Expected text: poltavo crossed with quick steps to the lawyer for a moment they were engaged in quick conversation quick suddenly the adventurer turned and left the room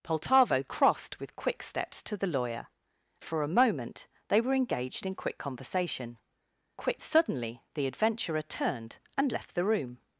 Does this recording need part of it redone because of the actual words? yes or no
no